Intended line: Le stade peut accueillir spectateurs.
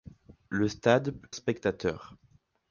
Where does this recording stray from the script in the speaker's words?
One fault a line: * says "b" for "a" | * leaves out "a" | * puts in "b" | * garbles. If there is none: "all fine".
* leaves out "accueillir"